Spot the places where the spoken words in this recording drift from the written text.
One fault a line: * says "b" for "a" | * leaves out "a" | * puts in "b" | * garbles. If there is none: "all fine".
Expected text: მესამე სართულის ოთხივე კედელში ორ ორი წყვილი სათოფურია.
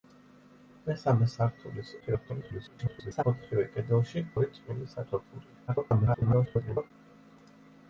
* garbles
* leaves out "ორ"
* garbles